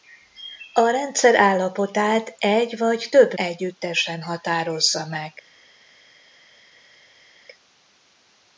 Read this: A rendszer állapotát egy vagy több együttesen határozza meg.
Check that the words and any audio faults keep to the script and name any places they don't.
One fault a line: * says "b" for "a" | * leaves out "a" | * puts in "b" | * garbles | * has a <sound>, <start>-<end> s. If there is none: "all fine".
all fine